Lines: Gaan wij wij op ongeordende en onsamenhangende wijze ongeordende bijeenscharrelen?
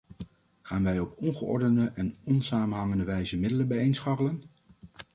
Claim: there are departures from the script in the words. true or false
true